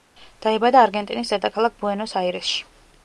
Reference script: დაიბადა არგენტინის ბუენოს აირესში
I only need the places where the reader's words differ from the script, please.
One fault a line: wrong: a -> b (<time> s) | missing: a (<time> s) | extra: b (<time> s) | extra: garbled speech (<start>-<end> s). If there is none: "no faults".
extra: დედაქალაქ (1.4 s)